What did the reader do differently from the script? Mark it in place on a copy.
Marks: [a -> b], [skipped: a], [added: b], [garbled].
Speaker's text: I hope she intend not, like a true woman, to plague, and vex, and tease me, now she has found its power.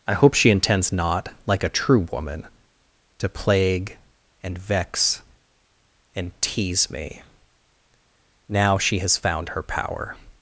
I hope she [intend -> intends] not, like a true woman, to plague, and vex, and tease me, now she has found [its -> her] power.